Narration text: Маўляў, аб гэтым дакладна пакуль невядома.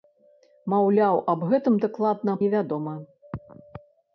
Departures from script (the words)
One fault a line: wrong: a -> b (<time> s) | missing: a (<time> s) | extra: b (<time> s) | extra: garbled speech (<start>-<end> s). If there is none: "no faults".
missing: пакуль (2.4 s)